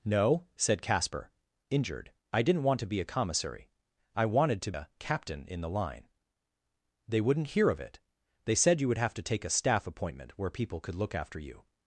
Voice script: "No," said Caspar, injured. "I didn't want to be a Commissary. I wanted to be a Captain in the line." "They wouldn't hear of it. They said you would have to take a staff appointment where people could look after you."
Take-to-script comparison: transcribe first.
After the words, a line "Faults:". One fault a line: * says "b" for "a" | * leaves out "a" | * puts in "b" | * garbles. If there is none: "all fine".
"No," said Caspar, injured. "I didn't want to be a Commissary. I wanted to a Captain in the line." "They wouldn't hear of it. They said you would have to take a staff appointment where people could look after you."
Faults:
* leaves out "be"